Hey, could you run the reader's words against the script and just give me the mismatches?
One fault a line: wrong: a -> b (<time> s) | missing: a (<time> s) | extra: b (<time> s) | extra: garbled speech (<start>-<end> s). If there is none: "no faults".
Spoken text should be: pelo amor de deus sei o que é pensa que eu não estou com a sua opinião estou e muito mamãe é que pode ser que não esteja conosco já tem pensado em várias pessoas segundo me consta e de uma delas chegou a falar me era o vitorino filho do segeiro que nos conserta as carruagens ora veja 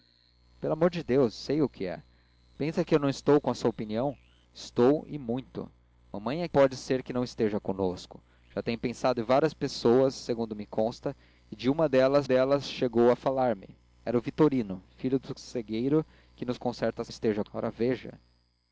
missing: que (6.5 s)
extra: delas (12.2 s)
wrong: carruagens -> esteja (17.1 s)